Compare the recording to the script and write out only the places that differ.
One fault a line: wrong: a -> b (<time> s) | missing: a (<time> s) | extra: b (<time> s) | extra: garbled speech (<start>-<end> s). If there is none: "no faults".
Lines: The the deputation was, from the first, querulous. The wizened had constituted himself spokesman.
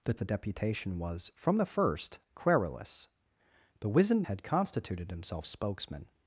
no faults